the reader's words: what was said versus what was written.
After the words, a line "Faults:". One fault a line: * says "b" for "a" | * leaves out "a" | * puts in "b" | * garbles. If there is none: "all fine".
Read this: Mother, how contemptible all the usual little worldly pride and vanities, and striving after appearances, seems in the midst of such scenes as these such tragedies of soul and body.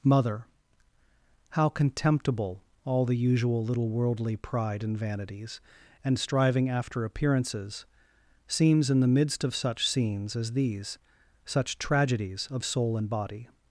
Mother, how contemptible all the usual little worldly pride and vanities, and striving after appearances, seems in the midst of such scenes as these such tragedies of soul and body.
Faults:
all fine